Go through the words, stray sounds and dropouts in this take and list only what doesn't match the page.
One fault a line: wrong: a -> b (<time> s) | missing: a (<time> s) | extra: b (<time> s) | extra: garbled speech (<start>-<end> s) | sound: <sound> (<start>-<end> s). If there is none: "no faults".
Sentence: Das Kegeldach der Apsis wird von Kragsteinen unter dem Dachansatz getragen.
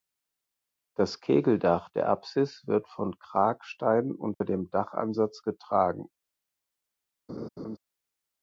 sound: dropout (4.3-4.4 s)
sound: laugh (7.3-7.8 s)